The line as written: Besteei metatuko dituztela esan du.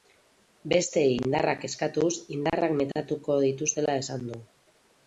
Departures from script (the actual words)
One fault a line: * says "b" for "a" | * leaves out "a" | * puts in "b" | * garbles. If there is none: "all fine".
* puts in "indarrak eskatuz indarrak"